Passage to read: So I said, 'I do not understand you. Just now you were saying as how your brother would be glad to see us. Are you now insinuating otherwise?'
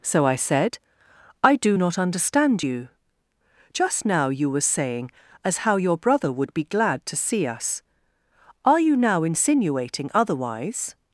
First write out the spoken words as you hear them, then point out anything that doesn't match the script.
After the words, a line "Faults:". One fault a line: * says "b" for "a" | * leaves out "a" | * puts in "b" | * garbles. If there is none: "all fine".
So I said, 'I do not understand you. Just now you were saying as how your brother would be glad to see us. Are you now insinuating otherwise?'
Faults:
all fine